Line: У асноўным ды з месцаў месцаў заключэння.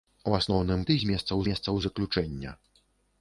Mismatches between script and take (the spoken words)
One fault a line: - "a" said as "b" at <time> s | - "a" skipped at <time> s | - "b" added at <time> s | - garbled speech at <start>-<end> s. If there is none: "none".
none